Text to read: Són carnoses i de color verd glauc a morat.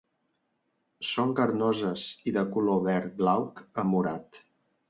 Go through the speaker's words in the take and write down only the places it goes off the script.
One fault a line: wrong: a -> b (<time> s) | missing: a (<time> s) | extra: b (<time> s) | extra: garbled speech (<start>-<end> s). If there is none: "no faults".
no faults